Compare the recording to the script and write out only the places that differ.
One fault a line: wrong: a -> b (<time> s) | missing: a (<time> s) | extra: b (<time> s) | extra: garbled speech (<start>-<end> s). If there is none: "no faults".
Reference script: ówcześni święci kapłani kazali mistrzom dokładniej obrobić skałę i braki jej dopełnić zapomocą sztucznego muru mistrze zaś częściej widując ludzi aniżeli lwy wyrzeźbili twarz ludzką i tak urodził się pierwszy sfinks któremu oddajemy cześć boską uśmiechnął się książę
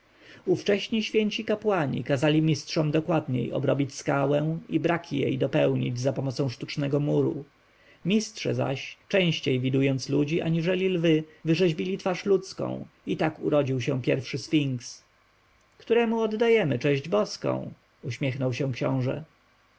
no faults